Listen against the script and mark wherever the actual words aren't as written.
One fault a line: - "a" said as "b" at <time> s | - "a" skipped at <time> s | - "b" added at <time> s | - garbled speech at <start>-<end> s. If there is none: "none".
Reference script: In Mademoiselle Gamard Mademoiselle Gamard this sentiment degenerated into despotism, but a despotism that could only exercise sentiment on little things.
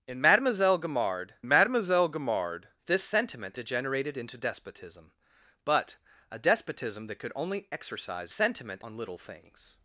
none